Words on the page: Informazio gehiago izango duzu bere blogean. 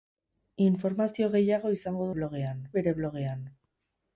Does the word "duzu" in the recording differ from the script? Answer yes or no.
yes